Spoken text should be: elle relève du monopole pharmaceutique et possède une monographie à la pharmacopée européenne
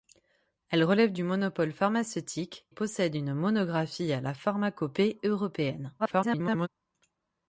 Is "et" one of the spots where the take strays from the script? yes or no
yes